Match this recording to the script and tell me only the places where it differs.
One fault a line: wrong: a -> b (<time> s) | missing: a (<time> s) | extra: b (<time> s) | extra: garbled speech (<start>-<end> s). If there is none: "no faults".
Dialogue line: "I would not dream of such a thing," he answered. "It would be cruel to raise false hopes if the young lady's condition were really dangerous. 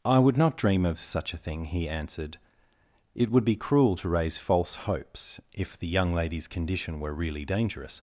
no faults